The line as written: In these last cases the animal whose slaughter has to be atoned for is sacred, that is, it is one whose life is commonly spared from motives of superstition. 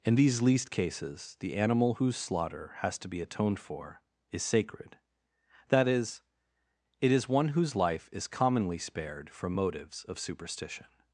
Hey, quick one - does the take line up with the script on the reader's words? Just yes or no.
no